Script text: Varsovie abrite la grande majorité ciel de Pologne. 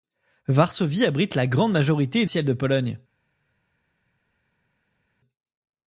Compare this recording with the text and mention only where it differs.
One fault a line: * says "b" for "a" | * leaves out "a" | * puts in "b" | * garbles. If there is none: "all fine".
all fine